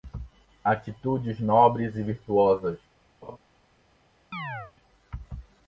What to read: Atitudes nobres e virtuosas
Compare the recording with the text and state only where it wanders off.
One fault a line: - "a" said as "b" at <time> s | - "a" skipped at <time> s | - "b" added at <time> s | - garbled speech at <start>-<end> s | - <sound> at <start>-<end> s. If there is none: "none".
- laugh at 3.2-3.4 s
- chirp at 4.3-4.7 s